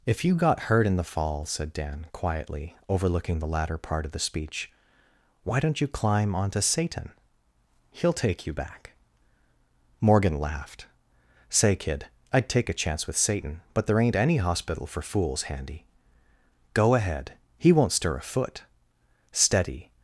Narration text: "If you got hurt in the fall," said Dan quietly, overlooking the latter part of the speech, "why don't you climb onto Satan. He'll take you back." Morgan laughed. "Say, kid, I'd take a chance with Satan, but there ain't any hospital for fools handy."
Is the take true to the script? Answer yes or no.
no